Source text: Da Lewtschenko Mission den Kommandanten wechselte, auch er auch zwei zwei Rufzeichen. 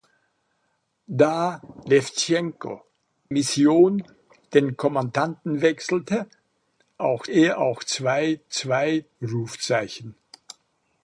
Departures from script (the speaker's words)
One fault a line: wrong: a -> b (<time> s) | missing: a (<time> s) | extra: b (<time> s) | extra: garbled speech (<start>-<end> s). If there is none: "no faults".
no faults